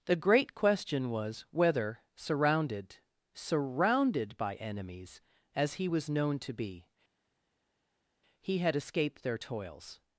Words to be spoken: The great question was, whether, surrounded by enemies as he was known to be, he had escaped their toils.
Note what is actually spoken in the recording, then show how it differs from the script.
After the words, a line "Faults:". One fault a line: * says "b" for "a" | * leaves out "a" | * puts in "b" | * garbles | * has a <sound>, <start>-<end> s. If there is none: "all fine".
The great question was, whether, surrounded surrounded by enemies as he was known to be, he had escaped their toils.
Faults:
* puts in "surrounded"